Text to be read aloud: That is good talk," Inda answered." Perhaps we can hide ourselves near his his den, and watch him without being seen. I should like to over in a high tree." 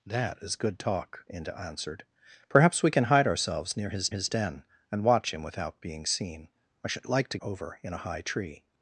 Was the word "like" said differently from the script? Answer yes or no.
no